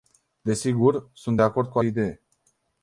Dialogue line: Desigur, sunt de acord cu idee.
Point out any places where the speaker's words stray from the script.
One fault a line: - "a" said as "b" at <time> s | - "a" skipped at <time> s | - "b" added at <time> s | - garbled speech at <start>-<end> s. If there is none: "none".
none